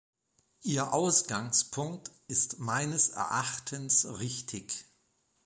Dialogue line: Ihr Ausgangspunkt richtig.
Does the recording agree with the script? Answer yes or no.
no